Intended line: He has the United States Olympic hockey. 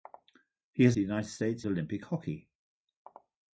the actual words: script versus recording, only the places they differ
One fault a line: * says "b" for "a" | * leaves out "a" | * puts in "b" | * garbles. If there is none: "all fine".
all fine